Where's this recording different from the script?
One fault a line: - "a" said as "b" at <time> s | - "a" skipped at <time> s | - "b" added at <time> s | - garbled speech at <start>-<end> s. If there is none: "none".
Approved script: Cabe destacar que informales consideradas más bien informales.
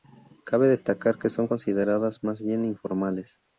- "informales" said as "son" at 1.3 s